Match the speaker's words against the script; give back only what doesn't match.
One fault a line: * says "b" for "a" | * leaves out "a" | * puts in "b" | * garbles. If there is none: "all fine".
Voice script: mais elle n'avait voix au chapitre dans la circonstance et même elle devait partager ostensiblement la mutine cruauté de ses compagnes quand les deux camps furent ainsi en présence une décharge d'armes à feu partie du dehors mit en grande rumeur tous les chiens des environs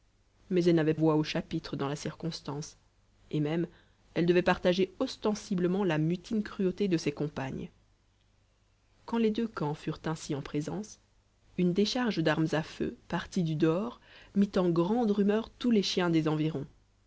all fine